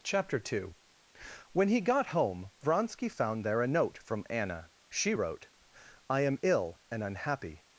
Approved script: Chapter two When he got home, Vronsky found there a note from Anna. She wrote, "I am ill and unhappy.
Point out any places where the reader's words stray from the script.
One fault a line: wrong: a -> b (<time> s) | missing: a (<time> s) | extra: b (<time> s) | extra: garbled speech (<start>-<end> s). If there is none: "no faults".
no faults